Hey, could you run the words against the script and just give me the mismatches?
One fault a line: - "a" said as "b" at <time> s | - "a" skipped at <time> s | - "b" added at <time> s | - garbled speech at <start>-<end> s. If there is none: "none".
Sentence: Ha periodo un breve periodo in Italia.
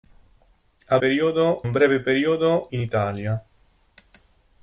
none